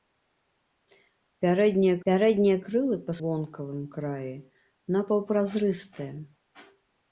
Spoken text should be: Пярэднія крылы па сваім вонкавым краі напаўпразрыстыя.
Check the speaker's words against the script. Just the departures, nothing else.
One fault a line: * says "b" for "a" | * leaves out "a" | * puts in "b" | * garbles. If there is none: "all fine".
* puts in "пярэднія"
* leaves out "сваім"